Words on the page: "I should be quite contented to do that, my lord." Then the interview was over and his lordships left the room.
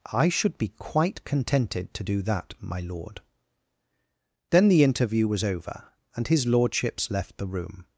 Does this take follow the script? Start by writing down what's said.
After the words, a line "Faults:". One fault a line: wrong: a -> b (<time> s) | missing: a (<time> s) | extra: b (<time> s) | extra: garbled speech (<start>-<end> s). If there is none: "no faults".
"I should be quite contented to do that, my lord." Then the interview was over and his lordships left the room.
Faults:
no faults